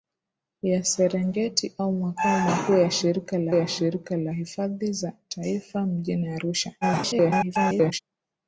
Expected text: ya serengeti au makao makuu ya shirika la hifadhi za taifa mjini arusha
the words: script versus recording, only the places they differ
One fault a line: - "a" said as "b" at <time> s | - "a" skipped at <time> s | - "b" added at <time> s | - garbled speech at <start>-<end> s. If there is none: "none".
- "ya shirika la" added at 3.5 s
- garbled speech at 6.8-8.0 s